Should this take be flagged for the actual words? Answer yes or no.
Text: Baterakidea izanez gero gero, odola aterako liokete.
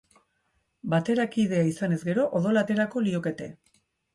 yes